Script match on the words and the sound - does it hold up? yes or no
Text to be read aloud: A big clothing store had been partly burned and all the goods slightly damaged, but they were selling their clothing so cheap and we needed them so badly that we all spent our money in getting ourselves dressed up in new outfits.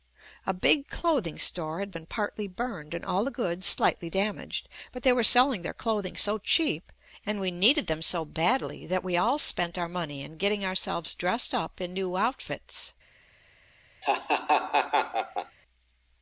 no